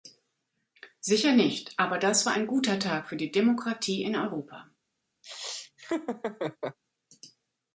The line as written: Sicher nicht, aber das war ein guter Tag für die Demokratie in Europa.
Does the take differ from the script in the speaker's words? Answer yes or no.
no